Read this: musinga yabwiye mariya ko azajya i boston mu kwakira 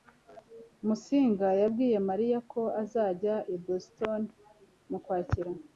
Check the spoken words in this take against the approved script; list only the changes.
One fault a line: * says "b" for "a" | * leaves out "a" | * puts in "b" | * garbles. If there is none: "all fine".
all fine